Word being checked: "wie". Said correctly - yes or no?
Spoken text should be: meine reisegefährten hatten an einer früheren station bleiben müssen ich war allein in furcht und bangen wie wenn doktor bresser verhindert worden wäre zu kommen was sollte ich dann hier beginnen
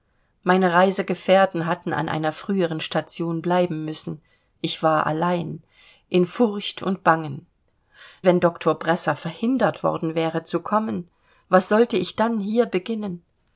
no